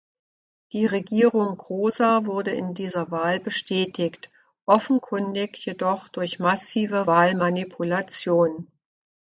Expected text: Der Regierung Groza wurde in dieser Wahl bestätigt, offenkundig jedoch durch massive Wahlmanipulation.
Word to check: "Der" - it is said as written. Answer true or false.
false